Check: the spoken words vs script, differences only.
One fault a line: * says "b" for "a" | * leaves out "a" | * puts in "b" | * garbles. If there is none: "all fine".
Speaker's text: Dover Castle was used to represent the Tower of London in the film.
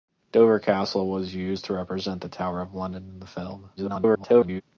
* garbles